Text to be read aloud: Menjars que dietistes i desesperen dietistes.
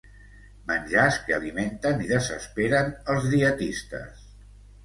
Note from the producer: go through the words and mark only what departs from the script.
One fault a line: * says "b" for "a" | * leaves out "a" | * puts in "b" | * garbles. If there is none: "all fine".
* says "alimenten" for "dietistes"
* puts in "els"